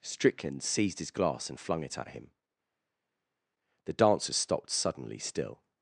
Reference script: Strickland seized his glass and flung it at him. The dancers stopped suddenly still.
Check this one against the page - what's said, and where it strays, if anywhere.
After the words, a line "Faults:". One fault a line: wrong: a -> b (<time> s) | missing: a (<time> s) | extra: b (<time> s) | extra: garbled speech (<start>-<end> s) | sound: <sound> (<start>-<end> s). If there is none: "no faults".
Strickland seized his glass and flung it at him. The dancers stopped suddenly still.
Faults:
no faults